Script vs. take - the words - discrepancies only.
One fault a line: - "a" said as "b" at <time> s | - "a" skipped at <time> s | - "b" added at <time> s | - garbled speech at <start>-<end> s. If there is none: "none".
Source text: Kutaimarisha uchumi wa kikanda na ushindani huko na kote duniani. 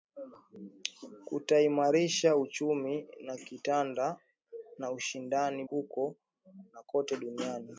none